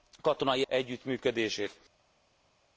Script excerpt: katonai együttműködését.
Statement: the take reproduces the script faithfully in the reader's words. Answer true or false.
true